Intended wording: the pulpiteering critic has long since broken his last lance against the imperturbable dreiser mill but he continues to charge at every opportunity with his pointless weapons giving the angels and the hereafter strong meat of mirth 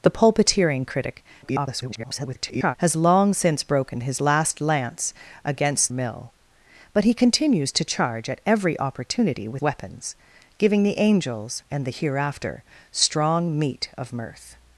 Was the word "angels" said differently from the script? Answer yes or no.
no